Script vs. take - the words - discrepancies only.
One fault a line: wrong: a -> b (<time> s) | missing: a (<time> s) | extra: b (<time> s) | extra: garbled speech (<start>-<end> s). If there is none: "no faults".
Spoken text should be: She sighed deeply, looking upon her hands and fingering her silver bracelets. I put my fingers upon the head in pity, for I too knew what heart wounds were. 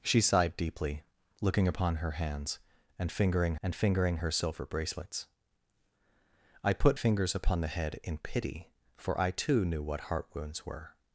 extra: and fingering (3.6 s)
missing: my (7.0 s)